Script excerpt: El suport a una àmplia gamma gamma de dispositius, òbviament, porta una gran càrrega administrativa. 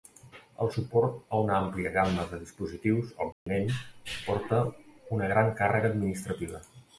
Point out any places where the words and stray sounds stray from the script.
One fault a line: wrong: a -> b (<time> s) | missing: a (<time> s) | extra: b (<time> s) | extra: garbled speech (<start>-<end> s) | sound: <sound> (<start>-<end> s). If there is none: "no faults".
missing: gamma (2.3 s)
sound: dropout (3.3-3.5 s)